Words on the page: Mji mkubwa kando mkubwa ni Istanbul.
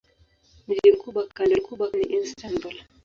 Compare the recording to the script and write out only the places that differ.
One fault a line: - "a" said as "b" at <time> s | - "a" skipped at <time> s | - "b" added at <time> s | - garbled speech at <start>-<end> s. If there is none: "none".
none